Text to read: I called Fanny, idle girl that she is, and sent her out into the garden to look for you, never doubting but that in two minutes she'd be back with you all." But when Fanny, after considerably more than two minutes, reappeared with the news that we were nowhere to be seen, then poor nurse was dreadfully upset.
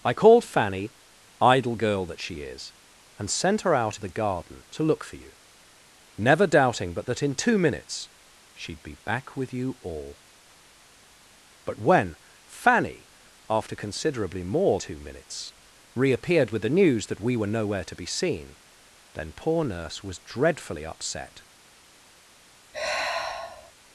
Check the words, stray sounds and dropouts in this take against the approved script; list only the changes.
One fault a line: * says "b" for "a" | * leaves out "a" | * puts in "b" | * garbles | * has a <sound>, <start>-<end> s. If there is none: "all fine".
* leaves out "into"
* leaves out "than"
* has a sigh, 22.7-23.7 s